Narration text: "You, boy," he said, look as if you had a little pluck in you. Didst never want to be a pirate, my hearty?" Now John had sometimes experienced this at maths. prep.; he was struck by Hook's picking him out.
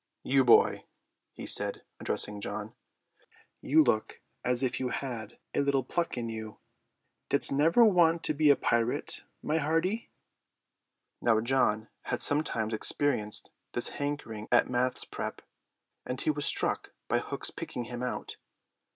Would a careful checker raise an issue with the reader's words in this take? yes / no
yes